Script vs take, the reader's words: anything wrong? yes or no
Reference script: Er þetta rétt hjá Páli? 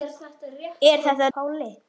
yes